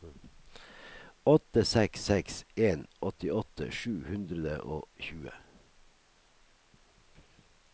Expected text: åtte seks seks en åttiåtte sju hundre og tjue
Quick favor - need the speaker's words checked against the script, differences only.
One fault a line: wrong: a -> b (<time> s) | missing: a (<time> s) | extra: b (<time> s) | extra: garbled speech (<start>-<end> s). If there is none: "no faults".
no faults